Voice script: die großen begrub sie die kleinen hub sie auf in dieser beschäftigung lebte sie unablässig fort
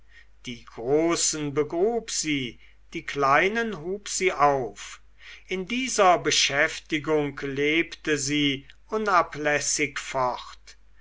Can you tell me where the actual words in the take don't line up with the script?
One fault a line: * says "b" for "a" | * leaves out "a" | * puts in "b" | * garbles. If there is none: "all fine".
all fine